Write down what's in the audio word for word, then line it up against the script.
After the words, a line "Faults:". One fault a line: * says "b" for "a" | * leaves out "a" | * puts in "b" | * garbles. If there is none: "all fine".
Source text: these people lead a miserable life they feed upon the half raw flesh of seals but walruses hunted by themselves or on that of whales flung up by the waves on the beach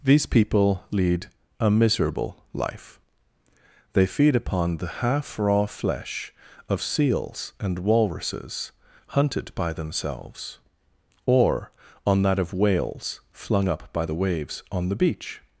these people lead a miserable life they feed upon the half raw flesh of seals and walruses hunted by themselves or on that of whales flung up by the waves on the beach
Faults:
* says "and" for "but"